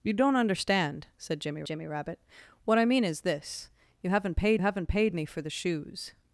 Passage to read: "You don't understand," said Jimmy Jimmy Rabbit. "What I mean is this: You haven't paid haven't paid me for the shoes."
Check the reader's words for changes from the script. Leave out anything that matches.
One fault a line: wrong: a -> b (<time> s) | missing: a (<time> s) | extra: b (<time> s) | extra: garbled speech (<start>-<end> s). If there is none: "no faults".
no faults